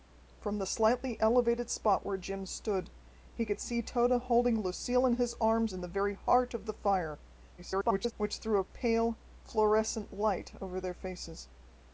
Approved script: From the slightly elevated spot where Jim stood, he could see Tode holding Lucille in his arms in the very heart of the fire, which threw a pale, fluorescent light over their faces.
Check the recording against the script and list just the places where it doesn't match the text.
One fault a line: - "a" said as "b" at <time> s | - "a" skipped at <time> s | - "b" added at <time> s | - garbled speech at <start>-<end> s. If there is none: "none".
- garbled speech at 7.6-8.1 s